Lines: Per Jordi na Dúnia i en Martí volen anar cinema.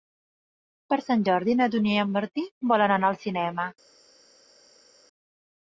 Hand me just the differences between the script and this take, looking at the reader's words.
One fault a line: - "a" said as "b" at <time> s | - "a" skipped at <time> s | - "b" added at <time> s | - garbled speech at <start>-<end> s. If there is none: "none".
- "Sant" added at 1.1 s
- "al" added at 3.1 s